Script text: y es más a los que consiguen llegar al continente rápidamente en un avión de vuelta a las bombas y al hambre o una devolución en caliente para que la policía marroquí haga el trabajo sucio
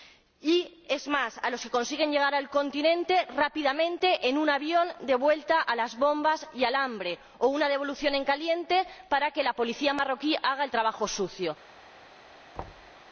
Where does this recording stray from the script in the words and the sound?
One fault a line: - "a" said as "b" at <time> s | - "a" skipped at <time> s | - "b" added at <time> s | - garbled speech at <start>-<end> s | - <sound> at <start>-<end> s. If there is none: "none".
- thud at 12.6-12.9 s